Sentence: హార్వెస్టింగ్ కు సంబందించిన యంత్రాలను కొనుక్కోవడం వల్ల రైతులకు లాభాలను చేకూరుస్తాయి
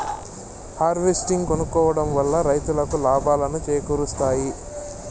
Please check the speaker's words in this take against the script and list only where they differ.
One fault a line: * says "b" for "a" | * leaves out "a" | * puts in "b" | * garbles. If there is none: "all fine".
* leaves out "కు సంబందించిన యంత్రాలను"